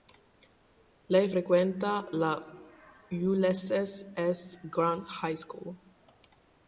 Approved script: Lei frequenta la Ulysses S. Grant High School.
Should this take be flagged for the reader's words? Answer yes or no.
no